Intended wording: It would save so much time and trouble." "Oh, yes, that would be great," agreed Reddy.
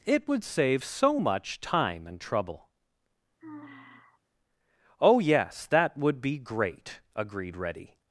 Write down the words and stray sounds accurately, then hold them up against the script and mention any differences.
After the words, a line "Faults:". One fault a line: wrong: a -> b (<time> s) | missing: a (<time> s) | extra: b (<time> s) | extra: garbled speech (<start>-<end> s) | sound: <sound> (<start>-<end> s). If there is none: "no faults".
It would save so much time and trouble." "Oh, yes, that would be great," agreed Reddy.
Faults:
sound: sigh (3.4-4.2 s)